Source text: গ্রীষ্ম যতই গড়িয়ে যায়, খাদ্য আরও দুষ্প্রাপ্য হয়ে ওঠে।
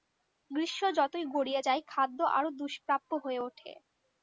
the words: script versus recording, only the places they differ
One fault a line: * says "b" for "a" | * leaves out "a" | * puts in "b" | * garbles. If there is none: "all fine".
all fine